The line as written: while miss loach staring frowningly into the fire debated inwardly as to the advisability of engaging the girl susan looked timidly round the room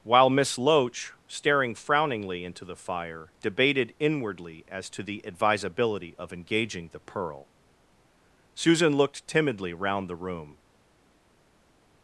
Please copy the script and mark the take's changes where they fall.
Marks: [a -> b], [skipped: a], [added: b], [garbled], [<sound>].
while miss loach staring frowningly into the fire debated inwardly as to the advisability of engaging the [girl -> pearl] susan looked timidly round the room